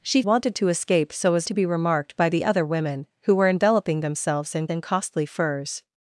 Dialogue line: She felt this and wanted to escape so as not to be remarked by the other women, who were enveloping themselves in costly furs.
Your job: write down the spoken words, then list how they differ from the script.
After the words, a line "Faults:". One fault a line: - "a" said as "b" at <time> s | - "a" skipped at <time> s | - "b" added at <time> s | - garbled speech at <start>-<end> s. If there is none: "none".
She wanted to escape so as to be remarked by the other women, who were enveloping themselves in in costly furs.
Faults:
- "felt this and" skipped at 0.2 s
- "not" skipped at 1.5 s
- "in" added at 4.7 s